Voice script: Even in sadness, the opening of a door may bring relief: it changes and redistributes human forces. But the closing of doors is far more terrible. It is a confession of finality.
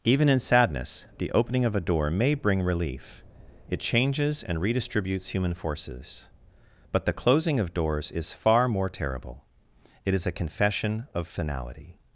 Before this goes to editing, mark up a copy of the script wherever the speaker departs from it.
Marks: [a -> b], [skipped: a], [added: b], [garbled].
Even in sadness, the opening of a door may bring relief: it changes and redistributes human forces. But the closing of doors is far more terrible. It is a confession of finality.